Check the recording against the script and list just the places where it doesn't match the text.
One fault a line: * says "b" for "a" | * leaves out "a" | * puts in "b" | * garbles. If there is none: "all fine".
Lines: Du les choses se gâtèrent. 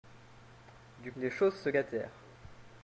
all fine